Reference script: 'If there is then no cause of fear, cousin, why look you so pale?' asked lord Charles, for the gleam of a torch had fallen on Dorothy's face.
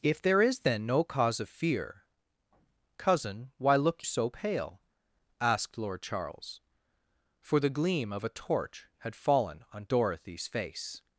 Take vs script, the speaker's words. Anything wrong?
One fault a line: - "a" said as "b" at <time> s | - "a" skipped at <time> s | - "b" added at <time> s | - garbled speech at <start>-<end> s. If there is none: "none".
- "you" skipped at 4.0 s